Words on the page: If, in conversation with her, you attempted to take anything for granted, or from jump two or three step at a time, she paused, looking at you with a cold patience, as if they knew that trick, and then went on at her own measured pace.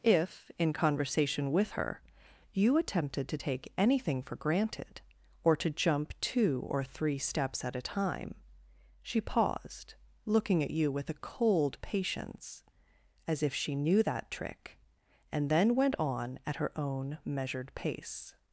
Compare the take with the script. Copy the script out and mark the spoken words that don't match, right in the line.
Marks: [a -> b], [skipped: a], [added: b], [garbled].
If, in conversation with her, you attempted to take anything for granted, or [from -> to] jump two or three [step -> steps] at a time, she paused, looking at you with a cold patience, as if [they -> she] knew that trick, and then went on at her own measured pace.